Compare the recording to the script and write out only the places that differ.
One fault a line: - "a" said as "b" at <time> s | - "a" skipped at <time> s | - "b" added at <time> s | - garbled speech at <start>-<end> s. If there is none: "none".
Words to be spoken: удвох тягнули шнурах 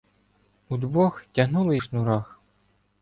none